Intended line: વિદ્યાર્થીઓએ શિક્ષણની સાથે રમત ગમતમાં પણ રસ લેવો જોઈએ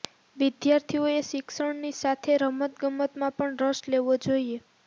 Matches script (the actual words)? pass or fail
pass